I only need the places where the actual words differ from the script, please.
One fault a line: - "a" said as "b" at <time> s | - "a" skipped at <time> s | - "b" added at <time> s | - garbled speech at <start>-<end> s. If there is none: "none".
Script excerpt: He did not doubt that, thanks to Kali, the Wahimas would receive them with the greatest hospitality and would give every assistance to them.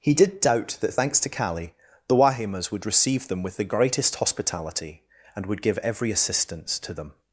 - "not" skipped at 0.4 s